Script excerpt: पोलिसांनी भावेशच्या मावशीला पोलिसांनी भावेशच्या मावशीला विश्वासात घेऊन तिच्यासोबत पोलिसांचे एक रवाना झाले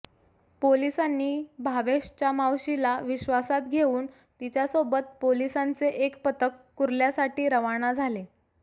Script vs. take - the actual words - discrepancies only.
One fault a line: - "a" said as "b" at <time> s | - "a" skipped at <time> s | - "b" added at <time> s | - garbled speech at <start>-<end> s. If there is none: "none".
- "पोलिसांनी भावेशच्या मावशीला" skipped at 3.0 s
- "पथक कुर्ल्यासाठी" added at 6.2 s